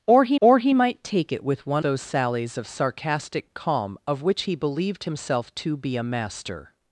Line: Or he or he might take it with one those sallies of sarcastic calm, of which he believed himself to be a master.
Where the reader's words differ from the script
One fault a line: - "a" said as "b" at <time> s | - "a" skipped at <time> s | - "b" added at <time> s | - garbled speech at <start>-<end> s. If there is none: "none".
none